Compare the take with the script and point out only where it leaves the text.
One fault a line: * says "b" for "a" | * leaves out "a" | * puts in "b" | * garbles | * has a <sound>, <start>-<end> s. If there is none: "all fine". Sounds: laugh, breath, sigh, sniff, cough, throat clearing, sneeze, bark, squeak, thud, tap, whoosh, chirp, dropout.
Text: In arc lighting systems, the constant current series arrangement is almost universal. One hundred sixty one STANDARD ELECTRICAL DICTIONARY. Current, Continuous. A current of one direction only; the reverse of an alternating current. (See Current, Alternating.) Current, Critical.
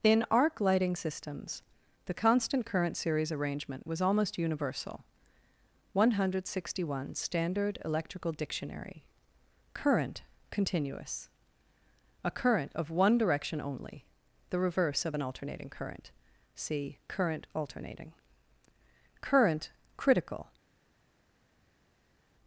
* says "was" for "is"